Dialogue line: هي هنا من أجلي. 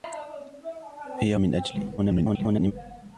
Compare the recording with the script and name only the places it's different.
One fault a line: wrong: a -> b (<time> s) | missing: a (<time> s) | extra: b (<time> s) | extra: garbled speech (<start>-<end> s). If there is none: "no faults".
missing: هنا (1.4 s)
extra: garbled speech (2.0-2.7 s)